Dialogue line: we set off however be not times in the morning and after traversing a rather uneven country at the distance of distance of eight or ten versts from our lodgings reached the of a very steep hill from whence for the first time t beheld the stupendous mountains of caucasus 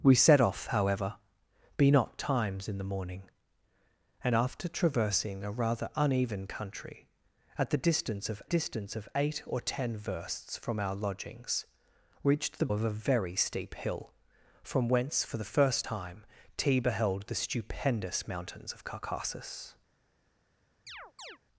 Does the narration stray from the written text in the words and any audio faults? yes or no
yes